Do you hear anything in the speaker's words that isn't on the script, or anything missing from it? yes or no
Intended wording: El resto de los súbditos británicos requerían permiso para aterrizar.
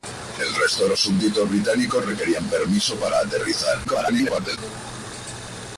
yes